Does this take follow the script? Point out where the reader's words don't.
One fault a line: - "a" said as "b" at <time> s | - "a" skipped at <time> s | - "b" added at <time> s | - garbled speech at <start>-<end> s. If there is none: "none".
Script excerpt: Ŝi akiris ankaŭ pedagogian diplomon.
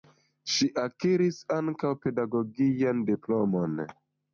none